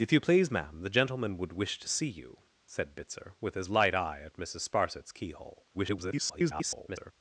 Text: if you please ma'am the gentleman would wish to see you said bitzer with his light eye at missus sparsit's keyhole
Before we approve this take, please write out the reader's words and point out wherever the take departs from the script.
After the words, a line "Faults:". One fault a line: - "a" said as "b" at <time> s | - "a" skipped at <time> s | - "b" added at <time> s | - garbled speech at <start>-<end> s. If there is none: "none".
if you please ma'am the gentleman would wish to see you said bitzer with his light eye at missus sparsit's keyhole [garbled]
Faults:
- garbled speech at 5.7-7.1 s